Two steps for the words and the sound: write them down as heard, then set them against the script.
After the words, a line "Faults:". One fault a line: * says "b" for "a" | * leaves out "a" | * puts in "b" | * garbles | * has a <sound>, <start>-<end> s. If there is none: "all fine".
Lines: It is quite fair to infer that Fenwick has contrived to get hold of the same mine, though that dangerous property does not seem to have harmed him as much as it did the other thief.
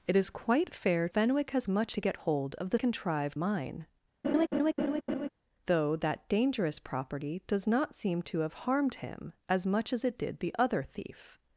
It is quite fair Fenwick has much to get hold of the contrived mine, though that dangerous property does not seem to have harmed him as much as it did the other thief.
Faults:
* leaves out "to infer that"
* says "much" for "contrived"
* says "contrived" for "same"
* has a laugh, 4.2-5.3 s